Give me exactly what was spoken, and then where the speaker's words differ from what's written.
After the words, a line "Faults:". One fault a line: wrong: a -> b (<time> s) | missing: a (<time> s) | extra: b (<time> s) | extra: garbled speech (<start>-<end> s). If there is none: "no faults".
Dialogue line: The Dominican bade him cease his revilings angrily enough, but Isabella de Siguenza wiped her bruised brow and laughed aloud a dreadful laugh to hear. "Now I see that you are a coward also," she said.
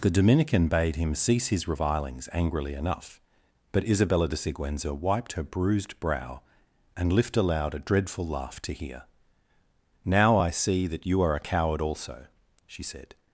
The Dominican bade him cease his revilings angrily enough, but Isabella de Siguenza wiped her bruised brow and lift aloud a dreadful laugh to hear. "Now I see that you are a coward also," she said.
Faults:
wrong: laughed -> lift (7.1 s)